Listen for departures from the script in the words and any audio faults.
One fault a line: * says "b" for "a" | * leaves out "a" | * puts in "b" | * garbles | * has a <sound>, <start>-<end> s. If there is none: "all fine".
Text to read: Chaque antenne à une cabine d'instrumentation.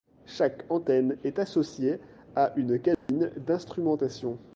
* puts in "est associée"
* has a dropout, 2.9-3.1 s